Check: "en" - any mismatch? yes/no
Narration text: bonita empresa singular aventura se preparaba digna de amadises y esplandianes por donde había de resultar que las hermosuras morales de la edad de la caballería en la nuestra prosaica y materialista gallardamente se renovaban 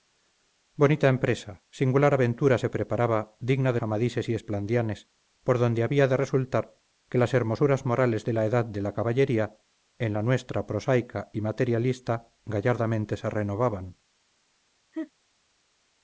no